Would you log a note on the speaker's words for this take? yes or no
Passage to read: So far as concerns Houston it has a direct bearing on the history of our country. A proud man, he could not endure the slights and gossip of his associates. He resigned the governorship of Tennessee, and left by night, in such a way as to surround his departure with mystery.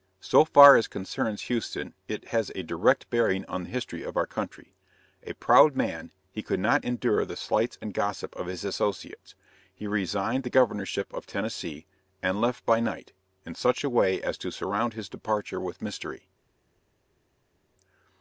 no